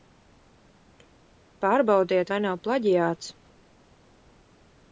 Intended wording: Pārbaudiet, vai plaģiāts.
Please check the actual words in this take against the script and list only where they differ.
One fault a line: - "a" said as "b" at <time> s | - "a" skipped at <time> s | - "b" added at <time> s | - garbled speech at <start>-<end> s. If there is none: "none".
- "nav" added at 2.5 s